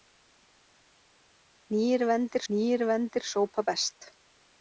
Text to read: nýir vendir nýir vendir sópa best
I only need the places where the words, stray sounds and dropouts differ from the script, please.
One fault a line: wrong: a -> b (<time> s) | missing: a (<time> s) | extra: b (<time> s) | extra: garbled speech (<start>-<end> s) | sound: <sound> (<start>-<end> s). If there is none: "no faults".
no faults